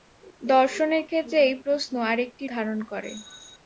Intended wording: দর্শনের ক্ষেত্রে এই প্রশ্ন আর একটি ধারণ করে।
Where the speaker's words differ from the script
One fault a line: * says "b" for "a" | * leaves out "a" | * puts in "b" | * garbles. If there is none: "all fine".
all fine